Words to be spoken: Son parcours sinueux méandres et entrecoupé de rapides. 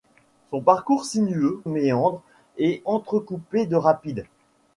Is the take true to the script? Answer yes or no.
yes